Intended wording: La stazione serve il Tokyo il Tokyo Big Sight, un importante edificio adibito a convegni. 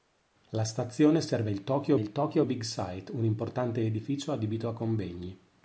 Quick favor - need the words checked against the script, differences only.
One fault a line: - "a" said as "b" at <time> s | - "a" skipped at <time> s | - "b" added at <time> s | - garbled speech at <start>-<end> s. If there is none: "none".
none